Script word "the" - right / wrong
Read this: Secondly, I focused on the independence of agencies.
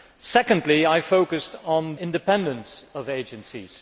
wrong